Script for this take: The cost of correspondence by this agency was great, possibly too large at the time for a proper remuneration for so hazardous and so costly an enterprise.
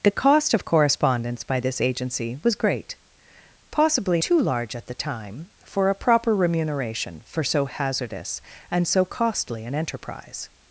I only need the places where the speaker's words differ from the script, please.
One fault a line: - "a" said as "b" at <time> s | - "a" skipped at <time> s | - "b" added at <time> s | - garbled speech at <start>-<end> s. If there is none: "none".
none